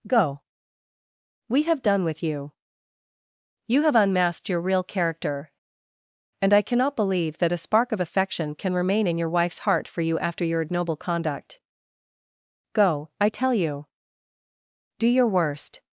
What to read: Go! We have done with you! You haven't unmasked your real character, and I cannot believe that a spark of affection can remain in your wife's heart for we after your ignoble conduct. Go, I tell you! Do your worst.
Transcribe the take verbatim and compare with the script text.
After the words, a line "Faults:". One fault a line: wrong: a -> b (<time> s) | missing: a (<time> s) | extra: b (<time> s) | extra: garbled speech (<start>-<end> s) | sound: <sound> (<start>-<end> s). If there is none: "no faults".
Go! We have done with you! You have unmasked your real character, and I cannot believe that a spark of affection can remain in your wife's heart for you after your ignoble conduct. Go, I tell you! Do your worst.
Faults:
wrong: haven't -> have (3.8 s)
wrong: we -> you (10.0 s)